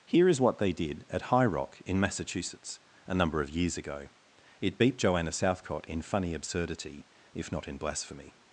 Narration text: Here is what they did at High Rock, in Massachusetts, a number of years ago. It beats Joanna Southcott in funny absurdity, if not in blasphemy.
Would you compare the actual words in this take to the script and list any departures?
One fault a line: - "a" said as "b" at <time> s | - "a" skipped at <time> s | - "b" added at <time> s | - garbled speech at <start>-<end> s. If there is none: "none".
- "beats" said as "beat" at 4.8 s